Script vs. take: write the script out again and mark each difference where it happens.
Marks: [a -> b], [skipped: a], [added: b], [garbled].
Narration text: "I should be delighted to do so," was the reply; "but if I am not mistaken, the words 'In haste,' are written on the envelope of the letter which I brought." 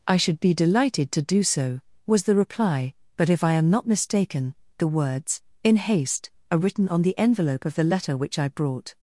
"I should be delighted to do so," was the reply; "but if I am not mistaken, the words 'In haste,' are written on the envelope of the letter which I brought."